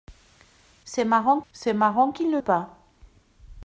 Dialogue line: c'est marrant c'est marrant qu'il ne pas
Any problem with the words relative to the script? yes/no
no